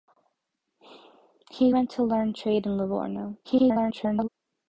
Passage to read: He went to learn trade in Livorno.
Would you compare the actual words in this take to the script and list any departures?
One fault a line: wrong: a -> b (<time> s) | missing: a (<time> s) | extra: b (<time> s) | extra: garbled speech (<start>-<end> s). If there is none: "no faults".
extra: garbled speech (3.4-4.3 s)